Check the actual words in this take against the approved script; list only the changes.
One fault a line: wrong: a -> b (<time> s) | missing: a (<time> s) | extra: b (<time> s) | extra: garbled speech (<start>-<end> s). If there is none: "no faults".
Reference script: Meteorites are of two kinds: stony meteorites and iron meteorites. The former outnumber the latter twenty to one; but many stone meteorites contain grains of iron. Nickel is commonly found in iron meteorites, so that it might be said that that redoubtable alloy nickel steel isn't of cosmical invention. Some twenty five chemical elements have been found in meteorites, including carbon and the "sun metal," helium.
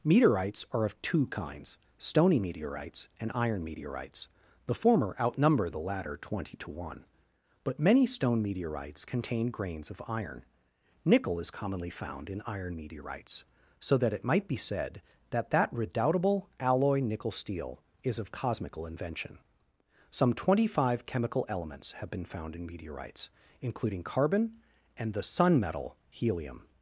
wrong: isn't -> is (18.0 s)